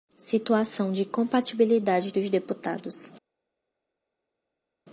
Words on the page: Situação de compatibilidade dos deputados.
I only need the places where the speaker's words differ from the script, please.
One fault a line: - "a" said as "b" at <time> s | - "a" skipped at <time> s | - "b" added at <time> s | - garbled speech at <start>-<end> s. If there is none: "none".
none